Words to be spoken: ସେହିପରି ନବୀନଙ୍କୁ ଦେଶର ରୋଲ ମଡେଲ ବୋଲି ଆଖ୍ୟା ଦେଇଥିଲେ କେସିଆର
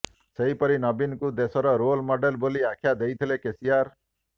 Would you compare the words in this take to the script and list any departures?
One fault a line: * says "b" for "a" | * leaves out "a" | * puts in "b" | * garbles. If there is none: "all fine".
all fine